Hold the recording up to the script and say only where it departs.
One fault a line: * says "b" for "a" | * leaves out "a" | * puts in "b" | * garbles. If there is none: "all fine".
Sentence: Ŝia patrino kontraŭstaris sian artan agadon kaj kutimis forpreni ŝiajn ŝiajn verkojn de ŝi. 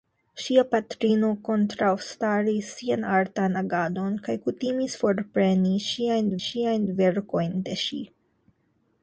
all fine